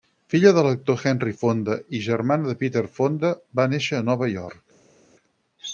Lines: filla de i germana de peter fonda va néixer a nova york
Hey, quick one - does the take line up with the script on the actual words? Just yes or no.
no